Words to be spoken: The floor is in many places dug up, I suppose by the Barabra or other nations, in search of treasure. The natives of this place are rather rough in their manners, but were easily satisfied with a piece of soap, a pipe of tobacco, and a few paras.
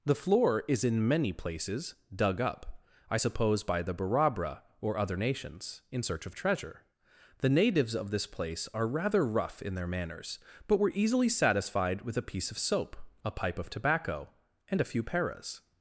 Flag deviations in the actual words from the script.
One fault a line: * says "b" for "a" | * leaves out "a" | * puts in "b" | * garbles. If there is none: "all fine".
all fine